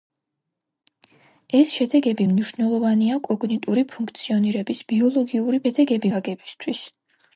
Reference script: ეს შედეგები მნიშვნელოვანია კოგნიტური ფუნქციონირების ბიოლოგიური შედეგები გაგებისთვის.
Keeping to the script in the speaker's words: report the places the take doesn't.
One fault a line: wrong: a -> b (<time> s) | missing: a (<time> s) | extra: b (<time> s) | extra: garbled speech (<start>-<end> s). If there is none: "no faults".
no faults